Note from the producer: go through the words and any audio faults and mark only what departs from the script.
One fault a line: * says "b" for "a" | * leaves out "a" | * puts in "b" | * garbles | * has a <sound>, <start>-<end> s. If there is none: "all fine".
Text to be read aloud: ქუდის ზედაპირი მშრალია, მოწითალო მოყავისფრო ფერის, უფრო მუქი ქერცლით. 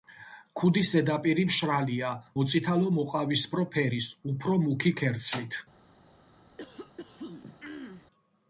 * has a throat clearing, 6.6-8.1 s